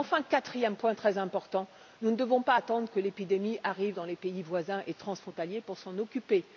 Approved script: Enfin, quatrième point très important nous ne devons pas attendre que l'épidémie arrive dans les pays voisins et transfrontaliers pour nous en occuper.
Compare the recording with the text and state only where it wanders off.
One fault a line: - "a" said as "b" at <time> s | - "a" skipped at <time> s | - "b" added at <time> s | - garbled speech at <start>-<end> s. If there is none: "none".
none